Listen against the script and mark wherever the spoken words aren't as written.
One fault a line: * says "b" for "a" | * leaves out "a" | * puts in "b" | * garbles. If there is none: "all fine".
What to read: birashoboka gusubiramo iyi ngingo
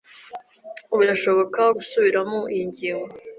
all fine